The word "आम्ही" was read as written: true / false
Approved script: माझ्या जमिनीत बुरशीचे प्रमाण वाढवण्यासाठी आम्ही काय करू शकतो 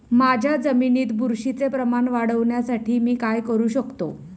false